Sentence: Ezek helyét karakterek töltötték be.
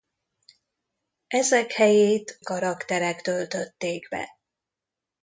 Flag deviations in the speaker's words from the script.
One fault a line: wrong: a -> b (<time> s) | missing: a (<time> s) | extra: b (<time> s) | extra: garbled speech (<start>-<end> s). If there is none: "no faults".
no faults